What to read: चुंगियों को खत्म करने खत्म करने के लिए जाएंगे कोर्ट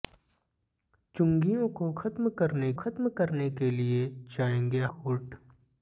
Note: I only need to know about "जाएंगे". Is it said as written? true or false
true